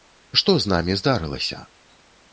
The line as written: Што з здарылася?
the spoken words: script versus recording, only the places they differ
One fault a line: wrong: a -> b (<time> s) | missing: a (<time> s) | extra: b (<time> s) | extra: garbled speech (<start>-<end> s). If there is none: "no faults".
extra: намі (0.7 s)